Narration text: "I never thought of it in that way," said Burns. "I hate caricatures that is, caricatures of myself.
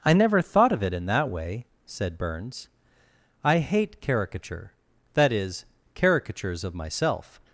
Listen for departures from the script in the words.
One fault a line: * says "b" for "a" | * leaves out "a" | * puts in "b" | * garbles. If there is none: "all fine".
* says "caricature" for "caricatures"